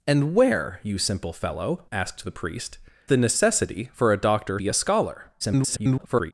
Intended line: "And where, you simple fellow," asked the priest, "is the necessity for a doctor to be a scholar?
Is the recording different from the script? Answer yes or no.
yes